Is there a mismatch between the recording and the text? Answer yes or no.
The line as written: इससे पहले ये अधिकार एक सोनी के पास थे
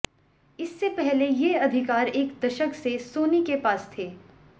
yes